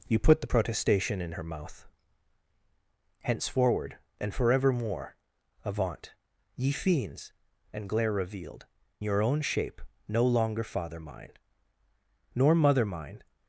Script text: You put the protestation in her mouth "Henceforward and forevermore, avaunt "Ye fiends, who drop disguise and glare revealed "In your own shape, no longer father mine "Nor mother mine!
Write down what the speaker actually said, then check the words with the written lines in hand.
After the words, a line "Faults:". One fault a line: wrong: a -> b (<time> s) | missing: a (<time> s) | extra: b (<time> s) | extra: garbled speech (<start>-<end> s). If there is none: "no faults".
You put the protestation in her mouth "Henceforward and forevermore, avaunt "Ye fiends, and glare revealed "Your own shape, no longer father mine "Nor mother mine!
Faults:
missing: who drop disguise (7.3 s)
missing: In (8.7 s)